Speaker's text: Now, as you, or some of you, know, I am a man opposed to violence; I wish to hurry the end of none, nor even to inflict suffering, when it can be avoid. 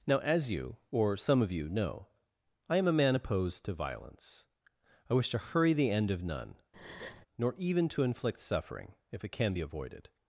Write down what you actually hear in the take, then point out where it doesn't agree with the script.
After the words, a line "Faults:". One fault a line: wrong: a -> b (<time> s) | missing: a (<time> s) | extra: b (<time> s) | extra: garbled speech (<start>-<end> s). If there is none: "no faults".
Now, as you, or some of you, know, I am a man opposed to violence; I wish to hurry the end of none, nor even to inflict suffering, if it can be avoided.
Faults:
wrong: when -> if (9.1 s)
wrong: avoid -> avoided (9.6 s)